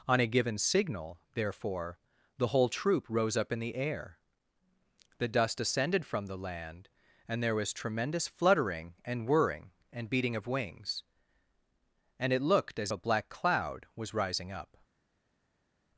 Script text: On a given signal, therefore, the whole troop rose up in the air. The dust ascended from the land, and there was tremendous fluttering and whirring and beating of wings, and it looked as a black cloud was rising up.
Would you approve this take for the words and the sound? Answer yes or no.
yes